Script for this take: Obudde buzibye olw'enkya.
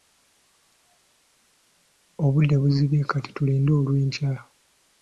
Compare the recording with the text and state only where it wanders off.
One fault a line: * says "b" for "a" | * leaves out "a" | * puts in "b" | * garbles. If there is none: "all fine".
* puts in "kati tulinde"